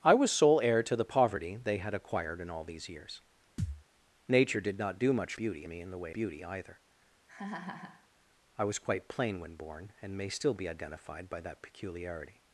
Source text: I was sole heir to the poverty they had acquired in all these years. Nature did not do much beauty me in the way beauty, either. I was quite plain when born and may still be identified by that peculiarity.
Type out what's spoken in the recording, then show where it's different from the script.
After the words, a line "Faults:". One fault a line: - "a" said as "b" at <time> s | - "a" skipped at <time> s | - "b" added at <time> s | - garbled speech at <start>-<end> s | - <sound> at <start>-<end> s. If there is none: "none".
I was sole heir to the poverty they had acquired in all these years. Nature did not do much beauty me in the way beauty, either. I was quite plain when born and may still be identified by that peculiarity.
Faults:
- thud at 3.6-3.8 s
- laugh at 7.3-8.1 s